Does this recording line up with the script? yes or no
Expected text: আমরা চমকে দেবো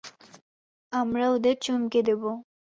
no